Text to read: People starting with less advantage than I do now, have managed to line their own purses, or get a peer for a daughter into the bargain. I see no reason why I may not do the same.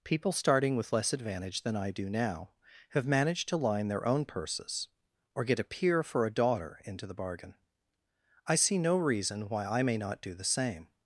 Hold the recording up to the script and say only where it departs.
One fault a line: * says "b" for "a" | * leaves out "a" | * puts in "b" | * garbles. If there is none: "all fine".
all fine